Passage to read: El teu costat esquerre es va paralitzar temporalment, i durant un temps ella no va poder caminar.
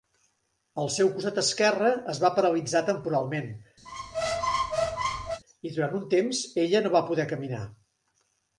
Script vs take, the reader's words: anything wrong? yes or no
yes